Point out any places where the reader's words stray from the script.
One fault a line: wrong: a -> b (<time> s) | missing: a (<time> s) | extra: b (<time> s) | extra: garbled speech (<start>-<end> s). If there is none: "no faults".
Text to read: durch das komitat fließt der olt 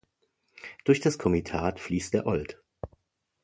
no faults